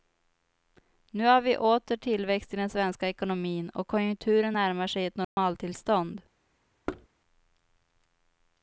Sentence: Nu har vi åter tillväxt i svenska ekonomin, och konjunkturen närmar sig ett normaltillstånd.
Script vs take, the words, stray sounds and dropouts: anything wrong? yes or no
yes